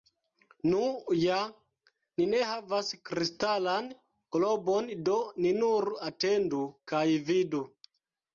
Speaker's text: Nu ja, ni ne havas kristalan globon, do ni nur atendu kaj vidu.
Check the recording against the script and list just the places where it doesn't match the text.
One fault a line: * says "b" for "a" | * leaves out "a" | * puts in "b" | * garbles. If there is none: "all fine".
all fine